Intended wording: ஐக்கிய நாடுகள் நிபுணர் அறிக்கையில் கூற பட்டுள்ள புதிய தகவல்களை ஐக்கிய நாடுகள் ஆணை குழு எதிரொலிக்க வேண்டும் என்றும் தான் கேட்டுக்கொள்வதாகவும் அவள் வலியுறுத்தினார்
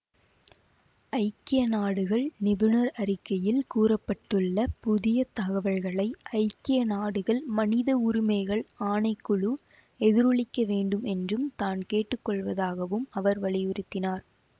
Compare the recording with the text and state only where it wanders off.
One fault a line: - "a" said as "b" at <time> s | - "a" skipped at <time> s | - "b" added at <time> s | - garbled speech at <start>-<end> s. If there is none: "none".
- "மனித உரிமைகள்" added at 7.5 s
- "அவள்" said as "அவர்" at 13.1 s